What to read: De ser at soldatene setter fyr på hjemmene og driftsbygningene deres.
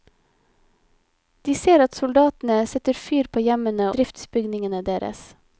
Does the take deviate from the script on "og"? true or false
true